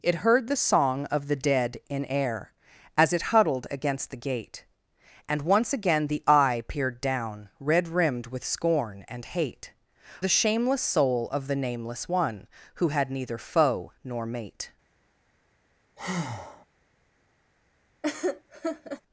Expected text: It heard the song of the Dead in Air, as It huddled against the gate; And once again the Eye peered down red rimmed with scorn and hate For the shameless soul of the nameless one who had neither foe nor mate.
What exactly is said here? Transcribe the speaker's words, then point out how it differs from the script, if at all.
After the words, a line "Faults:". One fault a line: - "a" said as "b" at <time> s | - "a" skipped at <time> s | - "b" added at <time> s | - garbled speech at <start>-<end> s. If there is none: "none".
It heard the song of the Dead in Air, as It huddled against the gate; And once again the Eye peered down red rimmed with scorn and hate The shameless soul of the nameless one who had neither foe nor mate.
Faults:
- "For" skipped at 9.7 s